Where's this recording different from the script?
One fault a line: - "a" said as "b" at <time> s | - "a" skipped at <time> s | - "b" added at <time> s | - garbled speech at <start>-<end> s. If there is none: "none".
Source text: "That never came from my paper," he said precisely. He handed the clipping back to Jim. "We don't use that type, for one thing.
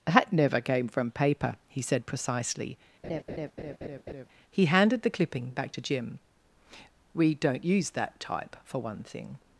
- "my" skipped at 1.1 s